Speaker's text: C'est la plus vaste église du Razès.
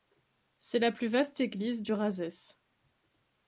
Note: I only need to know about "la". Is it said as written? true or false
true